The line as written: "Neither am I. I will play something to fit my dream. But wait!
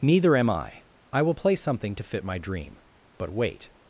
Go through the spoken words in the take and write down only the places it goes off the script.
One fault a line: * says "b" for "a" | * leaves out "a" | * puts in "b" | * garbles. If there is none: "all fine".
all fine